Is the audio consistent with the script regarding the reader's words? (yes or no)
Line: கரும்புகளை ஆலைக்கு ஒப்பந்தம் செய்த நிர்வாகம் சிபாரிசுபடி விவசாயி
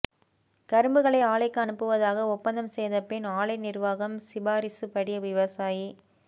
no